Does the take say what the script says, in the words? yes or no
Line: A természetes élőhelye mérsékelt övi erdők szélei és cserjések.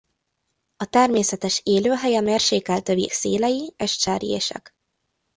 no